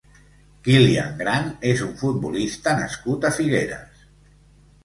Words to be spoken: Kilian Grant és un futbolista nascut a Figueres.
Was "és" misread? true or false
false